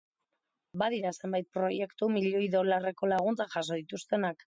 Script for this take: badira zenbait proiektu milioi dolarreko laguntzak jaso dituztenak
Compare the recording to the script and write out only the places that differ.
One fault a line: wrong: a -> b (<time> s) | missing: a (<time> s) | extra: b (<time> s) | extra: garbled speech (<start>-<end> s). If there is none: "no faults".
no faults